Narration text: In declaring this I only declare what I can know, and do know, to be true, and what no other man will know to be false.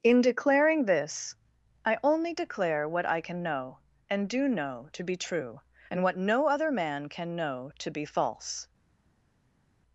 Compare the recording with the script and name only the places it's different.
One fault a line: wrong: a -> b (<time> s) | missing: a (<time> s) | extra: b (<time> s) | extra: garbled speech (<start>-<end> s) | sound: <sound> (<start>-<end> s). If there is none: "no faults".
wrong: will -> can (7.1 s)